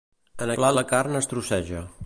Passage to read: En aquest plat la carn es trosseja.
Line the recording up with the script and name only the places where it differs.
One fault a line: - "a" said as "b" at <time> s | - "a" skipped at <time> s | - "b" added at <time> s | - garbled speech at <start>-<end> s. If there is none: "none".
- "aquest" skipped at 0.5 s